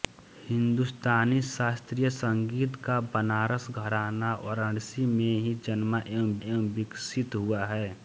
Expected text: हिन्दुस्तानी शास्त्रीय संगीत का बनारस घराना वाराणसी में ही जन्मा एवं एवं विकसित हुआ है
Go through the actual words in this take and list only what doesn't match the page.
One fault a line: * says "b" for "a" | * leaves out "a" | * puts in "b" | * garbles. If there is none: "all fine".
all fine